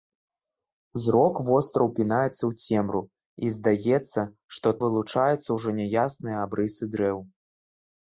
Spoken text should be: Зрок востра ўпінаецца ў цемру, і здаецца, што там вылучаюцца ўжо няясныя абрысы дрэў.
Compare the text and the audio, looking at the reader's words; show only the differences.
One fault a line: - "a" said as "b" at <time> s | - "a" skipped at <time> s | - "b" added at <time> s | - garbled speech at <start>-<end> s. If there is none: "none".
- "там" skipped at 4.7 s